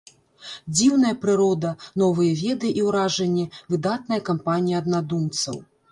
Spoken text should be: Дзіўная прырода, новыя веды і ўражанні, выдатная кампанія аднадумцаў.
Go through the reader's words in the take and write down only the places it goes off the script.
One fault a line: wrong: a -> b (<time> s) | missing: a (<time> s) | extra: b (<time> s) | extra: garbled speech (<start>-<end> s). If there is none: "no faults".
no faults